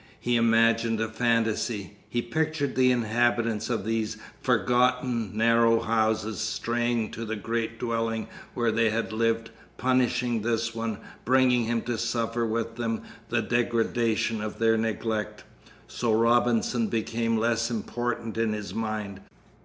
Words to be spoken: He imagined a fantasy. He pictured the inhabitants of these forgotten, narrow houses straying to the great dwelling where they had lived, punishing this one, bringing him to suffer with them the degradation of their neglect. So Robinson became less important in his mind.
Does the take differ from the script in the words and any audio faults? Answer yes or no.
no